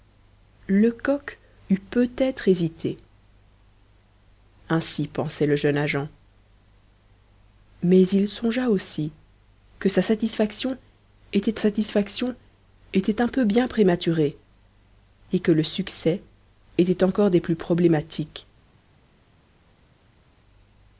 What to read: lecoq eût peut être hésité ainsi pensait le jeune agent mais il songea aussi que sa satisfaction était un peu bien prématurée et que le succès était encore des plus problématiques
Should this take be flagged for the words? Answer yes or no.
yes